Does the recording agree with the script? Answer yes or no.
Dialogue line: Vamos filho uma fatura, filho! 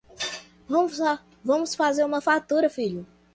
no